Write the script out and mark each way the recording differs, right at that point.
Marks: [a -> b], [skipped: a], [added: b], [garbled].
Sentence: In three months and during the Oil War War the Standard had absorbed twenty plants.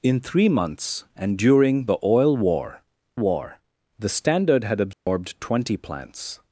In three months and during the Oil War War the Standard had absorbed twenty plants.